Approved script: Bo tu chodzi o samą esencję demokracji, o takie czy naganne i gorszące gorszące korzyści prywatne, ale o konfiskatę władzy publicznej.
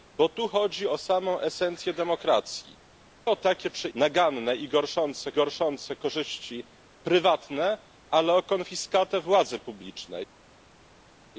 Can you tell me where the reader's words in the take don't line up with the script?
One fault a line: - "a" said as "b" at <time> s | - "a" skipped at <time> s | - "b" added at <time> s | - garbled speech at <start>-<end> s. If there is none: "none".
none